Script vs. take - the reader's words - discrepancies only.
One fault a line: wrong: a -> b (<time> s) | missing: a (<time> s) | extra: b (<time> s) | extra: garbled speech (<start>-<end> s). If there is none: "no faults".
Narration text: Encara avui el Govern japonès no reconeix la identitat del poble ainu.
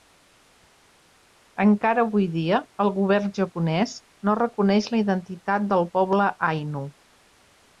extra: dia (2.4 s)